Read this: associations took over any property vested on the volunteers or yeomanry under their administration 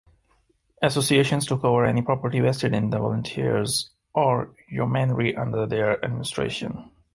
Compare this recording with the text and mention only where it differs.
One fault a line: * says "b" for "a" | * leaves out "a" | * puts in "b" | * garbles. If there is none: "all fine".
* says "in" for "on"